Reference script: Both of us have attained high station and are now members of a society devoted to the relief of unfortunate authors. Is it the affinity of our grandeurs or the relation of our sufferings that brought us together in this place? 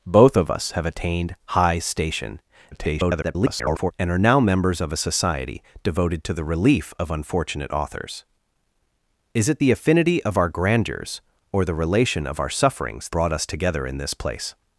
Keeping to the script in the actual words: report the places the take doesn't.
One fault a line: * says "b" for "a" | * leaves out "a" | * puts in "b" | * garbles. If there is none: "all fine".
* garbles
* leaves out "that"